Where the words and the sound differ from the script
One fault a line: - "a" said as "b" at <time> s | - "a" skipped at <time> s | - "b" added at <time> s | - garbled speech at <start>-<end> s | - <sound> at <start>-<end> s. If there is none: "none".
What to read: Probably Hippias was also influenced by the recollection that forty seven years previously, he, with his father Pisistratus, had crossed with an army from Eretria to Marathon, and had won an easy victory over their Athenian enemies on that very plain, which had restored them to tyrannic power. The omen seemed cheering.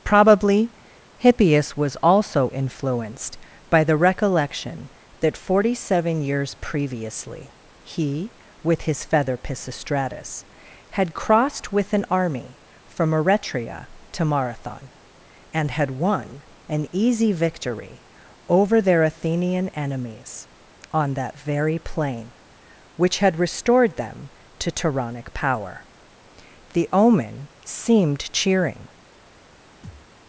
- "father" said as "feather" at 9.0 s
- thud at 29.8-30.1 s